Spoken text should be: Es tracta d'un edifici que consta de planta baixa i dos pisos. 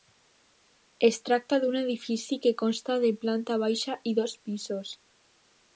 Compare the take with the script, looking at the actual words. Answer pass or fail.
pass